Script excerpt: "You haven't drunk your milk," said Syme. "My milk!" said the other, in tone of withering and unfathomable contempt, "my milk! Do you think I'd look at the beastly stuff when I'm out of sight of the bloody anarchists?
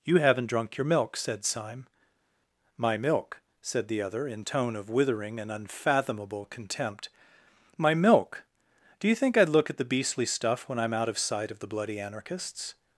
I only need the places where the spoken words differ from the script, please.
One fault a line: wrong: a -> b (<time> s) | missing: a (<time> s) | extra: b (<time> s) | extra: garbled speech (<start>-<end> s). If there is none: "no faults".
no faults